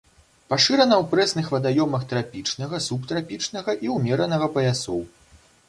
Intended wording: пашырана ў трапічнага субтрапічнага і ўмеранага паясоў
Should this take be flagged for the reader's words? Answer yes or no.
yes